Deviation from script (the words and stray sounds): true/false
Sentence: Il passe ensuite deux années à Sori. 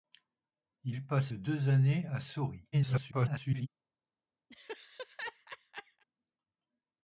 true